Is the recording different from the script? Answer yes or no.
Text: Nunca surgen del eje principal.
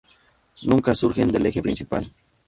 no